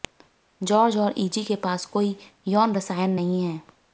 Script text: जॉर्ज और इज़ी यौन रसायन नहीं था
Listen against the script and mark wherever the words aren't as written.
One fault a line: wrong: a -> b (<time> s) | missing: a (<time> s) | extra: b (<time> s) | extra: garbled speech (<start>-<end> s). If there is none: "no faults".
extra: के पास कोई (1.4 s)
wrong: था -> है (3.4 s)